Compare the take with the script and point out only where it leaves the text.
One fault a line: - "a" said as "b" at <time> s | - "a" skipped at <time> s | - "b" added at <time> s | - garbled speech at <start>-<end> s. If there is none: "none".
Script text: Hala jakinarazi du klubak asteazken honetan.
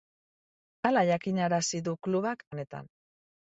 - "asteazken" skipped at 2.5 s